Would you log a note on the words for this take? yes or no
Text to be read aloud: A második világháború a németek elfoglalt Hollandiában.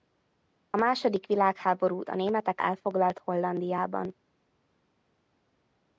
no